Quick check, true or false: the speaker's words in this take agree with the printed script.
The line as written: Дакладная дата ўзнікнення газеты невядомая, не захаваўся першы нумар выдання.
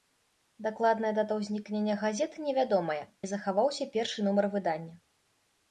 true